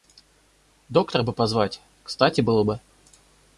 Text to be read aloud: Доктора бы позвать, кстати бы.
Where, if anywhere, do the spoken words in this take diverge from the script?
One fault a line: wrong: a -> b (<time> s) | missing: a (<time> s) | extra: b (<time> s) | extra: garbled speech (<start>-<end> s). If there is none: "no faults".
extra: было (2.4 s)